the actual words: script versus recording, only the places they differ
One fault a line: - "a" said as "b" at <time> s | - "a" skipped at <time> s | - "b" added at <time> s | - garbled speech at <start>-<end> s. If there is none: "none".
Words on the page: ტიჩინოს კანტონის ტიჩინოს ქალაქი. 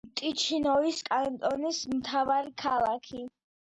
- "ტიჩინოს" said as "მთავარი" at 2.0 s